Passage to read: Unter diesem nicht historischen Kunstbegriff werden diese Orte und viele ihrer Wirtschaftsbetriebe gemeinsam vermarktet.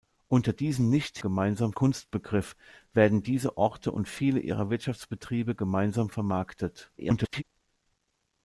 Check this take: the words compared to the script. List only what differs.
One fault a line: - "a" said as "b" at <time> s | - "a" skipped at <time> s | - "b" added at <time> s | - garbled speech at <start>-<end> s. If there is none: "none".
- "historischen" said as "gemeinsam" at 1.2 s
- garbled speech at 7.0-7.4 s